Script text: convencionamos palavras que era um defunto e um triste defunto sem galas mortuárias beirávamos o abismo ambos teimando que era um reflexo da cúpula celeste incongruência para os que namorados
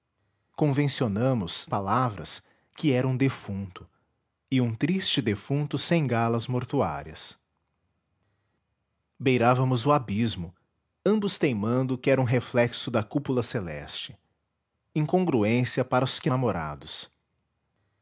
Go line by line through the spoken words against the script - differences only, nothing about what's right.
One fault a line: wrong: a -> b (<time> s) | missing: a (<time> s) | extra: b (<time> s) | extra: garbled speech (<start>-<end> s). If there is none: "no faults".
no faults